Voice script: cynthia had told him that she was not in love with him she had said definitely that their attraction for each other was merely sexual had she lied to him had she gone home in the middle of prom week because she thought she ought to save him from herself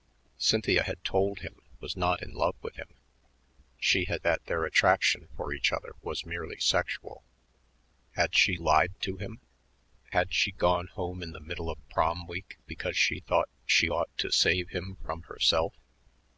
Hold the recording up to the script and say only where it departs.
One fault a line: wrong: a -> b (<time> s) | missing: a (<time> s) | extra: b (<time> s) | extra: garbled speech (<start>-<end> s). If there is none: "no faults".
missing: that she (1.6 s)
missing: said definitely (4.2 s)